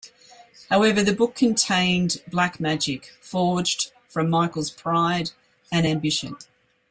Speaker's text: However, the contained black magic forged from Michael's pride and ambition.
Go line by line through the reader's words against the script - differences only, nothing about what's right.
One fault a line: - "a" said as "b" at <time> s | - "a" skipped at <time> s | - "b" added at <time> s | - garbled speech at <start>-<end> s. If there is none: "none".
- "book" added at 1.1 s